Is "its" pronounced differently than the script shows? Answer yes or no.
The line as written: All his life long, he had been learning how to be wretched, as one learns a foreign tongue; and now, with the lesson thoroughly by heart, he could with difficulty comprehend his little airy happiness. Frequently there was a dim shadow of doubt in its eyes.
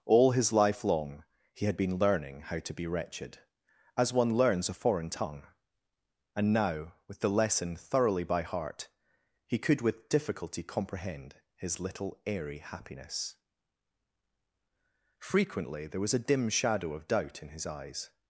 yes